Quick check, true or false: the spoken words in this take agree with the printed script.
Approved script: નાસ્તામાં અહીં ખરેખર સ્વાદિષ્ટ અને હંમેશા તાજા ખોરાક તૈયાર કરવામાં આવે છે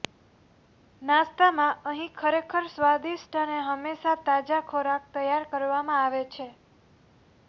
true